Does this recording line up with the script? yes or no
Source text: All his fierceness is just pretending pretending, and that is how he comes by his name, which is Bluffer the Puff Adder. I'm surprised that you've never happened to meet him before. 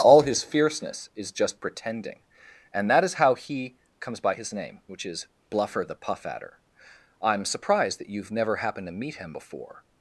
no